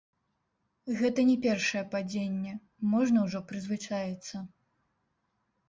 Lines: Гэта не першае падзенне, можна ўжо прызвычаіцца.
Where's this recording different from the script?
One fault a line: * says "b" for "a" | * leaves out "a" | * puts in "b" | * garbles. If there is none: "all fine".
all fine